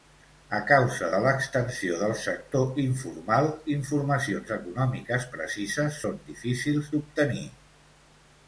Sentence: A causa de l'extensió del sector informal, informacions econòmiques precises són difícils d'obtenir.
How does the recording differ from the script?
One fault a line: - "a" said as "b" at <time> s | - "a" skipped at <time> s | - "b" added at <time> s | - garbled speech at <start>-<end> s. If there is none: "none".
none